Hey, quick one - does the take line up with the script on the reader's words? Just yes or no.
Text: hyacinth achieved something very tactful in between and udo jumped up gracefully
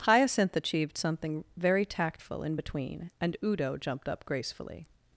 yes